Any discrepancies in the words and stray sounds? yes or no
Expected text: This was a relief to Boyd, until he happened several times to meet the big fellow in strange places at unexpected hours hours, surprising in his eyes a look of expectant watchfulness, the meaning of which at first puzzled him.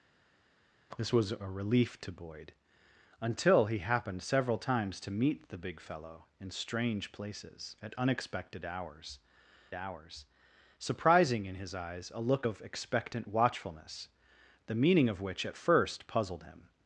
no